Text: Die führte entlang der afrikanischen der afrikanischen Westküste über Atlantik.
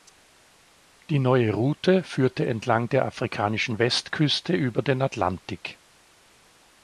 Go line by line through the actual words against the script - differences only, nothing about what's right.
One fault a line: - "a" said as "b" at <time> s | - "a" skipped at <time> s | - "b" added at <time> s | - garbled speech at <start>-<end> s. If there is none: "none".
- "neue Route" added at 1.2 s
- "der afrikanischen" skipped at 3.8 s
- "den" added at 4.8 s